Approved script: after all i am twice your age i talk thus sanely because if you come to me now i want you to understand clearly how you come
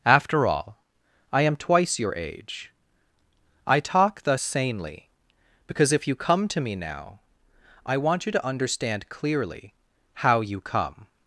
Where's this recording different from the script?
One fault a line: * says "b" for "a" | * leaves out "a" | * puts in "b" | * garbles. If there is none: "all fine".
all fine